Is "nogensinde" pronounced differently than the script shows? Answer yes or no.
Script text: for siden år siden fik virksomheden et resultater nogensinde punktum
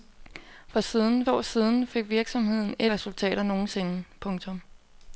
no